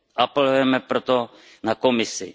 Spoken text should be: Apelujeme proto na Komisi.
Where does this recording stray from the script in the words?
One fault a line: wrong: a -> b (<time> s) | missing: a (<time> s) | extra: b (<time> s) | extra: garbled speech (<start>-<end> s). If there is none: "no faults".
no faults